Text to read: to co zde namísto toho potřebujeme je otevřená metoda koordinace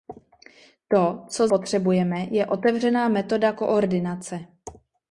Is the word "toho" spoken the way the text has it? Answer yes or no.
no